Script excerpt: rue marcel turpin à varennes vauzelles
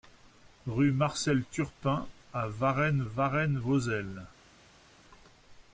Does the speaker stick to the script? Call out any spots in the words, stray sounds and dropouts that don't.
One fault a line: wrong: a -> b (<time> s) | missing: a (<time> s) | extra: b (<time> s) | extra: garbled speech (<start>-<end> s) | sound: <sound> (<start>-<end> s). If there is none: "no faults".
extra: varennes (3.0 s)